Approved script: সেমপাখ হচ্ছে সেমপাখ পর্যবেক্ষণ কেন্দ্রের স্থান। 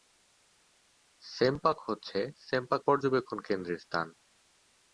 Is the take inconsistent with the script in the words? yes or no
no